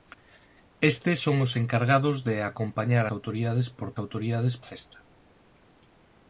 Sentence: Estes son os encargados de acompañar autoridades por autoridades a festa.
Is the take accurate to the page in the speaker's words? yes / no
yes